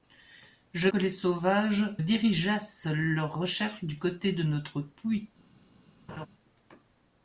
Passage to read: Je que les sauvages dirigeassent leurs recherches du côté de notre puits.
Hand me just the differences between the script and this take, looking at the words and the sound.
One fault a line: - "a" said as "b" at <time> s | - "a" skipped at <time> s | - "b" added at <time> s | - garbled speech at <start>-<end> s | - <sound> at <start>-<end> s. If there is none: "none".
- laugh at 6.1-6.3 s